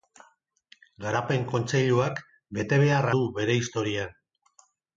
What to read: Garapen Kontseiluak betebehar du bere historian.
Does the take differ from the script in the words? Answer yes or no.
no